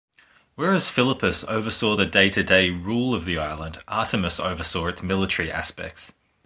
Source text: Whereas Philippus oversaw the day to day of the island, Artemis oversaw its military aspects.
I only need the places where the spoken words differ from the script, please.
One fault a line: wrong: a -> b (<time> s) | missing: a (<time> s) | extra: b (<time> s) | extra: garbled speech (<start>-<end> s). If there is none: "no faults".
extra: rule (2.7 s)